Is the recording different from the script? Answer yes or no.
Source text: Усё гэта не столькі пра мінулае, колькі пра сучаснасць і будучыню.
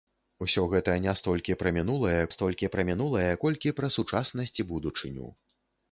yes